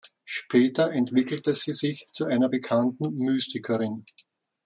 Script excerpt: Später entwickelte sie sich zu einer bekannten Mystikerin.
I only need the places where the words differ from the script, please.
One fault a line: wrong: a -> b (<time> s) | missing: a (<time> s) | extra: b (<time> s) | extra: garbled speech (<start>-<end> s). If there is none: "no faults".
no faults